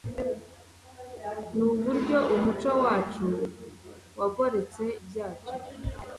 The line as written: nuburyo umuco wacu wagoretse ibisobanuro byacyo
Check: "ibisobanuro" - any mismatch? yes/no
yes